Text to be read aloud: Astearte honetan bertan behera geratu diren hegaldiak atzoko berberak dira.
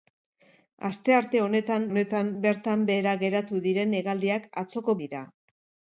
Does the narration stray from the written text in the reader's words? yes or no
yes